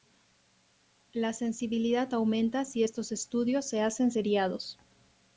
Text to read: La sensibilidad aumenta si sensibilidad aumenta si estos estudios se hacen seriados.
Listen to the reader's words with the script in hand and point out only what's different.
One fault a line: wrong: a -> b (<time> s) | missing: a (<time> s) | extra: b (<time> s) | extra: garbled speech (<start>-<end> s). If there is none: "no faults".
missing: sensibilidad aumenta si (2.8 s)